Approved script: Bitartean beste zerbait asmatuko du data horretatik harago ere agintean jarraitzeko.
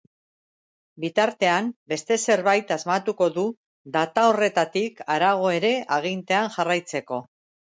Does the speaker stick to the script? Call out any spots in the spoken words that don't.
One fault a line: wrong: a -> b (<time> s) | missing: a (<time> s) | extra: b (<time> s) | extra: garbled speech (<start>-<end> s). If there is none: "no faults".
no faults